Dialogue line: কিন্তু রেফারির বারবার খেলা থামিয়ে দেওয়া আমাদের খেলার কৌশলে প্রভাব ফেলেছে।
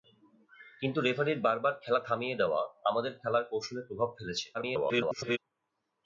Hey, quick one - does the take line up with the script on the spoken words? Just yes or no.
no